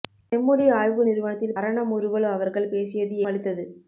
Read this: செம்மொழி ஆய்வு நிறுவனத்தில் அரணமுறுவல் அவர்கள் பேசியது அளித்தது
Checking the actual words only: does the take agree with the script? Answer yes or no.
yes